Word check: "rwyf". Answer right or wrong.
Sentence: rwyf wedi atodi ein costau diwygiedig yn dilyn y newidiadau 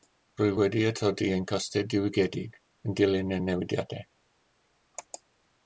right